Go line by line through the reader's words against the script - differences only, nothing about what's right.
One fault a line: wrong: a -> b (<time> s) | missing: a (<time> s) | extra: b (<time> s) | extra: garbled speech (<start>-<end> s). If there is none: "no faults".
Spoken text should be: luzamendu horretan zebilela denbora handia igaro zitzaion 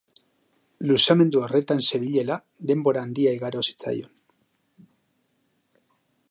no faults